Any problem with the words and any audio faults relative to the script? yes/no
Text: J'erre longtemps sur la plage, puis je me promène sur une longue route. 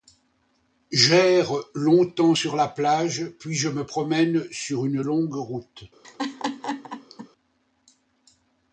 yes